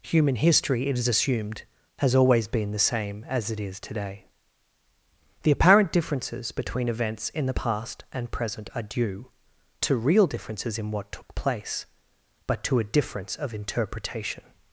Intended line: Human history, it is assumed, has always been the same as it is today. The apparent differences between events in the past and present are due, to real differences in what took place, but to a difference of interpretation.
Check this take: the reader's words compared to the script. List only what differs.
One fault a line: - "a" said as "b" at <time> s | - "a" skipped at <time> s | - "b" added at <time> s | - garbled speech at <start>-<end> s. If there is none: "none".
none